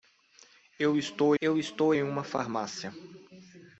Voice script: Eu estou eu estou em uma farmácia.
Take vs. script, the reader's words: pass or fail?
pass